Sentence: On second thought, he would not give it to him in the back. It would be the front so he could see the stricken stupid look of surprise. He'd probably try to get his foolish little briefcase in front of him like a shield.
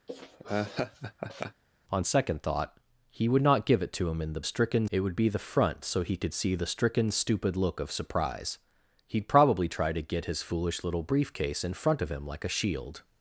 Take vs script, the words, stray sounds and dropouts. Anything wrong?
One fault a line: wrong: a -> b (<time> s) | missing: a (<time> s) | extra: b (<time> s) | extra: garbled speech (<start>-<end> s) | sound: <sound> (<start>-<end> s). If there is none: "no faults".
sound: laugh (0.1-1.6 s)
wrong: back -> stricken (4.4 s)